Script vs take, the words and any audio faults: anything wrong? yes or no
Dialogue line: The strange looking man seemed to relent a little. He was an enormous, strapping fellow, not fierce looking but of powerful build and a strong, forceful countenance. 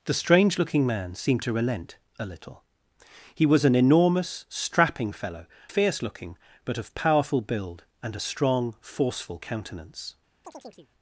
yes